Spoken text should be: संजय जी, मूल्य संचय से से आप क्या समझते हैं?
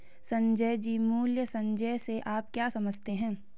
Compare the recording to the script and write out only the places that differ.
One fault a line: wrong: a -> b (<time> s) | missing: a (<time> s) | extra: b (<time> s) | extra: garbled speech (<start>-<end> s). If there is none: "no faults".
missing: से (2.2 s)